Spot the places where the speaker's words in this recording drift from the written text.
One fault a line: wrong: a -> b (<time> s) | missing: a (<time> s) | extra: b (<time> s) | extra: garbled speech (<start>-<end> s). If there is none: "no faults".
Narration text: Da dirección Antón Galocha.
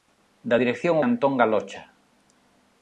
no faults